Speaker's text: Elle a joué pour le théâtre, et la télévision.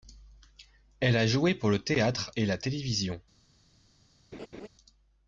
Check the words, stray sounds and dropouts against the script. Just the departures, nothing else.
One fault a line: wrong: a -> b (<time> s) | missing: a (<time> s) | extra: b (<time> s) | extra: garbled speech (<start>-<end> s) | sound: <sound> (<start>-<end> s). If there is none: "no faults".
sound: laugh (4.3-4.7 s)